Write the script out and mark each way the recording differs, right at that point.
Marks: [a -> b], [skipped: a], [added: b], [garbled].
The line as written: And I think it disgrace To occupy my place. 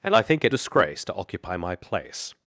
And I think it disgrace To occupy my place.